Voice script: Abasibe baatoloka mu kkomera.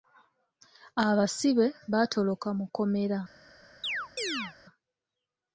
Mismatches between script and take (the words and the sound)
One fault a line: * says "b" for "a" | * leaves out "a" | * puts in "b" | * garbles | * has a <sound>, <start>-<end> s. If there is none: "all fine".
* has a chirp, 3.8-4.6 s